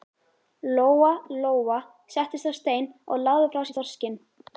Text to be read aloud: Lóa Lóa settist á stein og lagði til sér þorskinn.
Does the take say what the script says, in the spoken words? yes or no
no